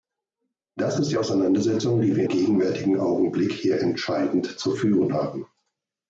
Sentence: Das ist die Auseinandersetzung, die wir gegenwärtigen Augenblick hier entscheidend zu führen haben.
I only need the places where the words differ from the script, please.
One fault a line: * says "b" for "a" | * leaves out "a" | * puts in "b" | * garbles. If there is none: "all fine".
all fine